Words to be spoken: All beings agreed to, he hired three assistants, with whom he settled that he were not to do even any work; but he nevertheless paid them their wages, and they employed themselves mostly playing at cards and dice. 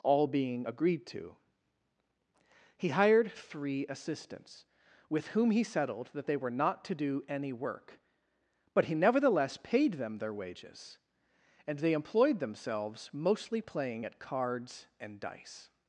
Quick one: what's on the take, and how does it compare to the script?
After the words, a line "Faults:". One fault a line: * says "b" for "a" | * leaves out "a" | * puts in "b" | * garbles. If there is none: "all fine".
All being agreed to, he hired three assistants, with whom he settled that they were not to do any work; but he nevertheless paid them their wages, and they employed themselves mostly playing at cards and dice.
Faults:
* says "being" for "beings"
* says "they" for "he"
* leaves out "even"